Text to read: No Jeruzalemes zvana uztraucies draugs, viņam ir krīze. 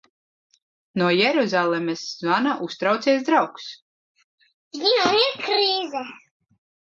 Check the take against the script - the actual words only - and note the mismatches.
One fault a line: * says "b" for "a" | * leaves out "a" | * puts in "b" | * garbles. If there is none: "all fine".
all fine